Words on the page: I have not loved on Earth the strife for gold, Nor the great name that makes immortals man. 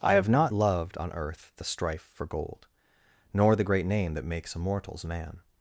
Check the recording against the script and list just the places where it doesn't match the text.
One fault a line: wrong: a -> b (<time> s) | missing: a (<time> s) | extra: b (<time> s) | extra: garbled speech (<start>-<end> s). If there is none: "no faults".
no faults